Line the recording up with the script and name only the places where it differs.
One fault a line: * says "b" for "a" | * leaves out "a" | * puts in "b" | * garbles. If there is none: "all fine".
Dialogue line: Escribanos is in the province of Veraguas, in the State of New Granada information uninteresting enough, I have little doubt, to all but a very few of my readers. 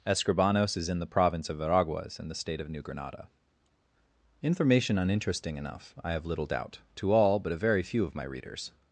all fine